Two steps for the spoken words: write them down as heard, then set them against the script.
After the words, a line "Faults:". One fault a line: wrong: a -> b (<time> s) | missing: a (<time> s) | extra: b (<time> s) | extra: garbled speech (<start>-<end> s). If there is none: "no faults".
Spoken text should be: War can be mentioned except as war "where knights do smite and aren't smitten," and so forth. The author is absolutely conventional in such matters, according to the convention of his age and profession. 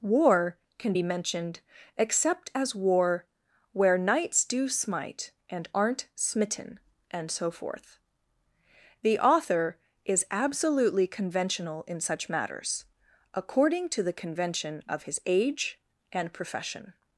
War can be mentioned except as war "where knights do smite and aren't smitten," and so forth. The author is absolutely conventional in such matters, according to the convention of his age and profession.
Faults:
no faults